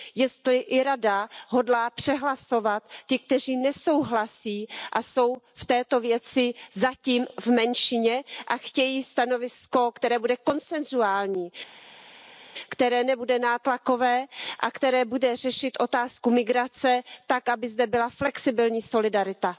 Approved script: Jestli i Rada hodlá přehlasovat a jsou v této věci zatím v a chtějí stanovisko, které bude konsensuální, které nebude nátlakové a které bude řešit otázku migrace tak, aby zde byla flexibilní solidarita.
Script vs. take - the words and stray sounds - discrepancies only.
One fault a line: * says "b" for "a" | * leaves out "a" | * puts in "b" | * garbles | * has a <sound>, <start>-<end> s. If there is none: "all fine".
* puts in "ty kteří nesouhlasí"
* puts in "menšině"